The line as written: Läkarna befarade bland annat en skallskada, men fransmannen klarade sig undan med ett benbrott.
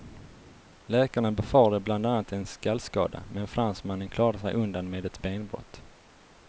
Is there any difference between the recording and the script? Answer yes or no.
no